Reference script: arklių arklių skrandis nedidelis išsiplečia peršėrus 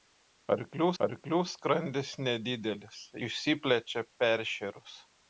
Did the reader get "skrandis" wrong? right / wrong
right